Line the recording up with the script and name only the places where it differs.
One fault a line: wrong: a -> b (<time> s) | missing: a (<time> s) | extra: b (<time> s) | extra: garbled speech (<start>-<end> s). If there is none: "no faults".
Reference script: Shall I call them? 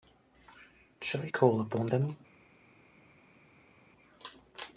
extra: upon (1.6 s)